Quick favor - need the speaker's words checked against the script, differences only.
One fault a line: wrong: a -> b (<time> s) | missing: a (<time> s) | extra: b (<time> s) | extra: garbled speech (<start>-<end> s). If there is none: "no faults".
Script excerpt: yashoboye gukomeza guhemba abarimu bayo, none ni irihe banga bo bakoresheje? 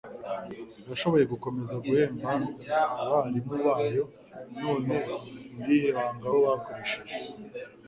no faults